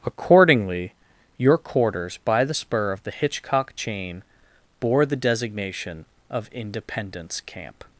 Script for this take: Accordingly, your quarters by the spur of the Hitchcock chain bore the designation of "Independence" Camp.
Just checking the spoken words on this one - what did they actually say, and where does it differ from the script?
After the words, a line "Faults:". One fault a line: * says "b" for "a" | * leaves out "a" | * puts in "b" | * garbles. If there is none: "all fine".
Accordingly, your quarters by the spur of the Hitchcock chain bore the designation of "Independence" Camp.
Faults:
all fine